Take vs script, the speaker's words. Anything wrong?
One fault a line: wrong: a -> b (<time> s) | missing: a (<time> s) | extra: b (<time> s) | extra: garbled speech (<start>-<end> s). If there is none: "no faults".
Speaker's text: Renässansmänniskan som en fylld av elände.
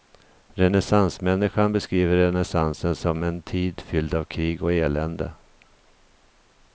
extra: beskriver renässansen (1.7 s)
extra: tid (3.4 s)
extra: krig och (4.2 s)